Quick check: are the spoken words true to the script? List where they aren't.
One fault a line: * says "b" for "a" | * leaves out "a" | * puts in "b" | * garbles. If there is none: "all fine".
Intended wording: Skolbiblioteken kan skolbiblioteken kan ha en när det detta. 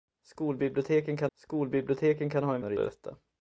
all fine